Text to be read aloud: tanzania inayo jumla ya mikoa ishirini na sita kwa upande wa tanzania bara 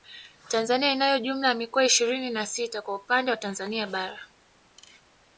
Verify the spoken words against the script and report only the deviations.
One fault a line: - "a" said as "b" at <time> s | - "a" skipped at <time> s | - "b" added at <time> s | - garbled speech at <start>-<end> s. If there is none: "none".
none